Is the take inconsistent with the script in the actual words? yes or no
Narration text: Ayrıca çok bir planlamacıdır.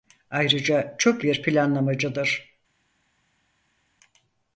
no